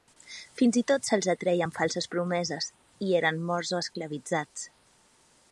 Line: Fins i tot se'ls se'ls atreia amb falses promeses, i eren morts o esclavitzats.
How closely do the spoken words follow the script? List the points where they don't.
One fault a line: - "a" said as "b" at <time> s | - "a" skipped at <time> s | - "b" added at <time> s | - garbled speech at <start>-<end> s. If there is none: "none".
- "se'ls" skipped at 1.3 s